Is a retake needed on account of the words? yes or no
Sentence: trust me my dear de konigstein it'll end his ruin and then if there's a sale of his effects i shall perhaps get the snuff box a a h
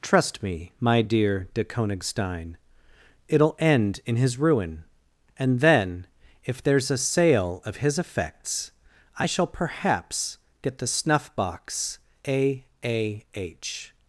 yes